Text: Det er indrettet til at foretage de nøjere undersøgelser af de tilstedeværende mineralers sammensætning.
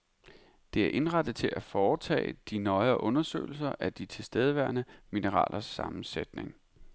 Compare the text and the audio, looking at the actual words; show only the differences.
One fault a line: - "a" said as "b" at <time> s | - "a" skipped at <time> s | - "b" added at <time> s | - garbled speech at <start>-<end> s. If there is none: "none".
none